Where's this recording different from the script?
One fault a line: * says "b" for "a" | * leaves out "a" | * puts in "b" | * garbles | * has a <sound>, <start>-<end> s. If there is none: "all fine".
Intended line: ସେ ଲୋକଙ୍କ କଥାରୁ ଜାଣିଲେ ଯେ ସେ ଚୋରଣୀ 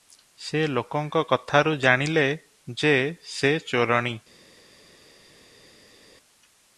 all fine